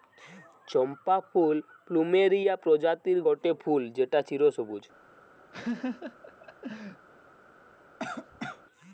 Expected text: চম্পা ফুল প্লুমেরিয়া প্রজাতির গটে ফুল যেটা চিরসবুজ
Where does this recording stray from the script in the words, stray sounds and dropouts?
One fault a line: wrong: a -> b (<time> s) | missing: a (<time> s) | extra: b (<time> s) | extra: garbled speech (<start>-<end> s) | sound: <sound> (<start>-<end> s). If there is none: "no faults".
sound: laugh (5.5-7.1 s)
sound: cough (8.0-8.6 s)